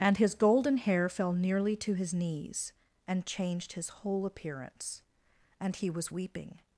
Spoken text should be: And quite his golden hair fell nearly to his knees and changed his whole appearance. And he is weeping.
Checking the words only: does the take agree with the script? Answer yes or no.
no